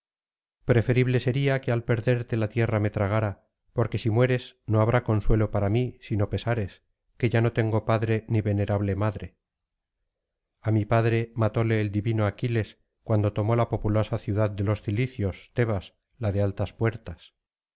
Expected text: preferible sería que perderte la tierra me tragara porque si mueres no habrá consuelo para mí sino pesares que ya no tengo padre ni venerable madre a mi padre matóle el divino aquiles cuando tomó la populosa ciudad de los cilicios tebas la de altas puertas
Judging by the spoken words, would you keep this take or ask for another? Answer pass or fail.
fail